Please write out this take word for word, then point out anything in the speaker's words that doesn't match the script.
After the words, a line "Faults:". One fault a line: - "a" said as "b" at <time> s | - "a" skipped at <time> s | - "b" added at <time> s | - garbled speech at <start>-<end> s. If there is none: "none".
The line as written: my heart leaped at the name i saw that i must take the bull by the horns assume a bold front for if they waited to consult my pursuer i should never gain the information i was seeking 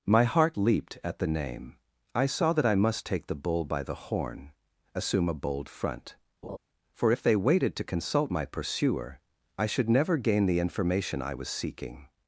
my heart leaped at the name i saw that i must take the bull by the horn assume a bold front for if they waited to consult my pursuer i should never gain the information i was seeking
Faults:
- "horns" said as "horn" at 3.9 s